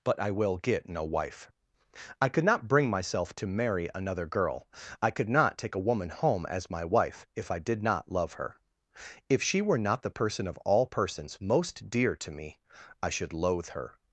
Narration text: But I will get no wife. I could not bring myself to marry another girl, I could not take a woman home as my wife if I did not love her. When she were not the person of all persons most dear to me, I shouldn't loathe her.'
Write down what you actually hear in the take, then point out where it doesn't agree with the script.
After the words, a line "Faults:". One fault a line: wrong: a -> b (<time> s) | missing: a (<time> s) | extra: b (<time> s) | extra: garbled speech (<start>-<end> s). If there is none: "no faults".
But I will get no wife. I could not bring myself to marry another girl, I could not take a woman home as my wife if I did not love her. If she were not the person of all persons most dear to me, I should loathe her.'
Faults:
wrong: When -> If (9.3 s)
wrong: shouldn't -> should (13.1 s)